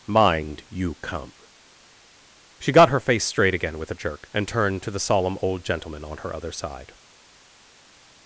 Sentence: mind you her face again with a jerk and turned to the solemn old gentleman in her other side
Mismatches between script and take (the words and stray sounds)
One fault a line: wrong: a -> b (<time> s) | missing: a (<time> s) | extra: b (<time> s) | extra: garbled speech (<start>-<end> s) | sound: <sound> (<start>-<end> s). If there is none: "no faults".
extra: come she got (1.0 s)
extra: straight (3.2 s)
wrong: in -> on (6.0 s)